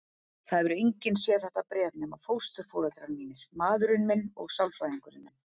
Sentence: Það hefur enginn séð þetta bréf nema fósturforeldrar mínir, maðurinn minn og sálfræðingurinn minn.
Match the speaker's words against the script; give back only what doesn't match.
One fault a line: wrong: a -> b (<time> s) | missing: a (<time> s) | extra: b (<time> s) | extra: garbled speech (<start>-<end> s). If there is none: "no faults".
no faults